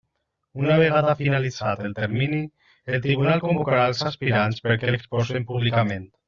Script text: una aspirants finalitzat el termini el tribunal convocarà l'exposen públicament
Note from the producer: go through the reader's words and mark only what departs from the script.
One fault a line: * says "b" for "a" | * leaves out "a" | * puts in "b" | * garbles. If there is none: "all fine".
* says "vegada" for "aspirants"
* puts in "els aspirants perquè"